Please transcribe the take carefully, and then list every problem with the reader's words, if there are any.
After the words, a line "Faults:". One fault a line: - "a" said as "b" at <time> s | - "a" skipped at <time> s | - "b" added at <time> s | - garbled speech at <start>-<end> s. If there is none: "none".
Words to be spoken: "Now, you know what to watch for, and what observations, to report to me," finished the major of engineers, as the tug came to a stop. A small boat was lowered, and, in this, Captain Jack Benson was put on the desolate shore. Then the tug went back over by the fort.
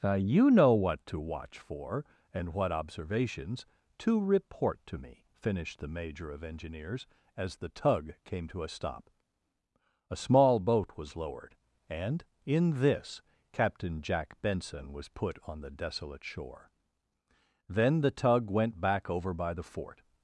"Now, you know what to watch for, and what observations, to report to me," finished the major of engineers, as the tug came to a stop. A small boat was lowered, and, in this, Captain Jack Benson was put on the desolate shore. Then the tug went back over by the fort.
Faults:
none